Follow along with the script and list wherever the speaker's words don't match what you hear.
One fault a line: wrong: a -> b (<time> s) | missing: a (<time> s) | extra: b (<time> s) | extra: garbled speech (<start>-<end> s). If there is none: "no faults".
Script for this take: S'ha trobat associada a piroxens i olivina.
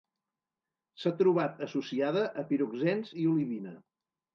no faults